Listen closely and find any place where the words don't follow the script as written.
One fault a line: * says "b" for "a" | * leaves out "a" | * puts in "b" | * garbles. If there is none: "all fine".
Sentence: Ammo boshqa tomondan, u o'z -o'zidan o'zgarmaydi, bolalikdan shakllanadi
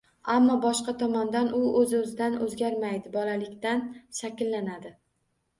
all fine